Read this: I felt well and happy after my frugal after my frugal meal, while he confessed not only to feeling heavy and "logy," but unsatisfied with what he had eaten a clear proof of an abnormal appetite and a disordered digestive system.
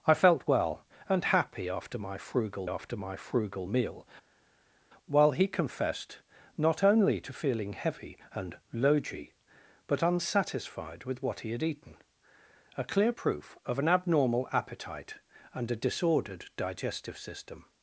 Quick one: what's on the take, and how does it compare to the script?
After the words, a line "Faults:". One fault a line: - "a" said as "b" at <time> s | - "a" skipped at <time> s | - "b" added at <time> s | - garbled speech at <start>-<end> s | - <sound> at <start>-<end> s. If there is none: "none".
I felt well and happy after my frugal after my frugal meal, while he confessed not only to feeling heavy and "logy," but unsatisfied with what he had eaten a clear proof of an abnormal appetite and a disordered digestive system.
Faults:
none